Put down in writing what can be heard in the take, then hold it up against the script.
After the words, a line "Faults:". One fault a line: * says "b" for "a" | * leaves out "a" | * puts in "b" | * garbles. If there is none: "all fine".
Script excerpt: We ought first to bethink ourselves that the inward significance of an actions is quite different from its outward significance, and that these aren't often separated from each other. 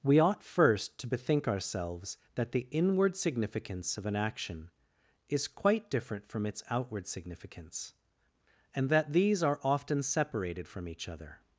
We ought first to bethink ourselves that the inward significance of an action is quite different from its outward significance, and that these are often separated from each other.
Faults:
* says "action" for "actions"
* says "are" for "aren't"